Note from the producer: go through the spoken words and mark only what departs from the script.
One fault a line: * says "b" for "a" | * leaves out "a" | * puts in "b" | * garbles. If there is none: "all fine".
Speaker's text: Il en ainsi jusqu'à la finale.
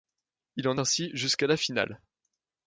all fine